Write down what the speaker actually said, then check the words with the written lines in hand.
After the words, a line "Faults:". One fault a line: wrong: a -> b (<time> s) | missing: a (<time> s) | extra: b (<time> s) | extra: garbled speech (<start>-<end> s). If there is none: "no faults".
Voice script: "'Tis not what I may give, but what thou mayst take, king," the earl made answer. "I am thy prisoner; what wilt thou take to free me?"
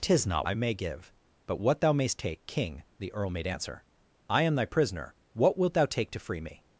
"'Tis not I may give, but what thou mayst take, king," the earl made answer. "I am thy prisoner; what wilt thou take to free me?"
Faults:
missing: what (0.5 s)